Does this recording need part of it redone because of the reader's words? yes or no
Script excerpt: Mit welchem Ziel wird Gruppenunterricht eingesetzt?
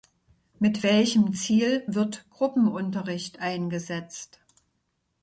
no